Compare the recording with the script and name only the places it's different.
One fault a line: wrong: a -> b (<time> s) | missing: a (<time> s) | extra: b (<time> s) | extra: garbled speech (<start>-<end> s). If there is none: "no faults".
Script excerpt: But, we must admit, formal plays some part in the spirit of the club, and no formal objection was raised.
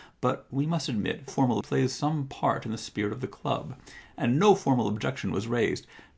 no faults